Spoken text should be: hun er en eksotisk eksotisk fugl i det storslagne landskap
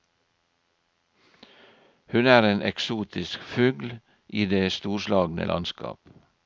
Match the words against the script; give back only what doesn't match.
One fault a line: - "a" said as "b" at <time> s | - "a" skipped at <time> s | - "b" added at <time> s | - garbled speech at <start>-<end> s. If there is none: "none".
- "eksotisk" skipped at 3.4 s